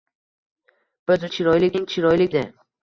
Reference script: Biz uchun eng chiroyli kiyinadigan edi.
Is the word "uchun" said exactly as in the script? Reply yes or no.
no